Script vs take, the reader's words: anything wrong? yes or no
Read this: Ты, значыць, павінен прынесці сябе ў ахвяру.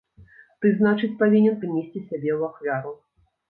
no